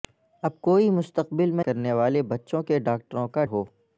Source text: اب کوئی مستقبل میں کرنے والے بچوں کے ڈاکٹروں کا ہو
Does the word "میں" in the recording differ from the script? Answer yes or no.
no